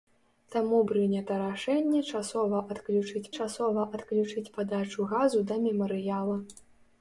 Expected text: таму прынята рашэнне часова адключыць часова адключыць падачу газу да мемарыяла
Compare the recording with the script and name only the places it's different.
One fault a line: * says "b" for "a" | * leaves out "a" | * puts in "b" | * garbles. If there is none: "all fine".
all fine